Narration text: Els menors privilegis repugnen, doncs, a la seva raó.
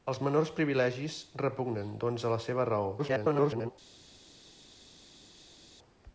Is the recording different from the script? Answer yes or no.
yes